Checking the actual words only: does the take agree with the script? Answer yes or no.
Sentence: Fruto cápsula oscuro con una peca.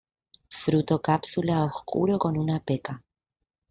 yes